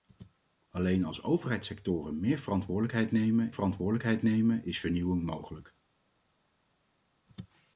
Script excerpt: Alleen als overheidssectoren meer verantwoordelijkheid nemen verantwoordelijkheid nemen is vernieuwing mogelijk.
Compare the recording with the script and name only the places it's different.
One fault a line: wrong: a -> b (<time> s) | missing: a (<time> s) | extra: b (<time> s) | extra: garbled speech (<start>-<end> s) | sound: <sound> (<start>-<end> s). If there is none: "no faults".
no faults